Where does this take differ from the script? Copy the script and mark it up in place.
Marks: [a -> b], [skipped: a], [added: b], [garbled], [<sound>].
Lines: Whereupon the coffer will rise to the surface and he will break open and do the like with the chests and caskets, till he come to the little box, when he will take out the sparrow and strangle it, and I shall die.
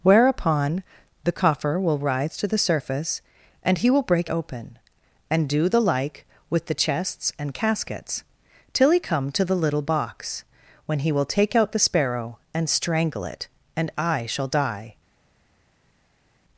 Whereupon the coffer will rise to the surface and he will break open and do the like with the chests and caskets, till he come to the little box, when he will take out the sparrow and strangle it, and I shall die.